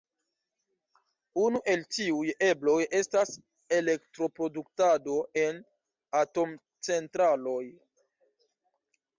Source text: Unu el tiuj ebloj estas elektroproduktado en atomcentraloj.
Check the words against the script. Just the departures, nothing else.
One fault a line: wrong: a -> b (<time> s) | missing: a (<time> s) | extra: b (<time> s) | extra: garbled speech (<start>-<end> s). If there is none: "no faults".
no faults